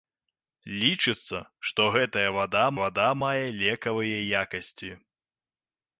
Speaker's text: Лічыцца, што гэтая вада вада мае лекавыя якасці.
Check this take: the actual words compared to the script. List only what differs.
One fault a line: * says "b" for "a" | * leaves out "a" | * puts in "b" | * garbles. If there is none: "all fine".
all fine